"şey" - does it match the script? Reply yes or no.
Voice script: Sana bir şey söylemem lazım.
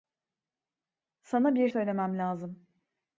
no